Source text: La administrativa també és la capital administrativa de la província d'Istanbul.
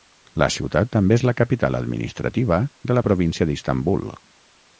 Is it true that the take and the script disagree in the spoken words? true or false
true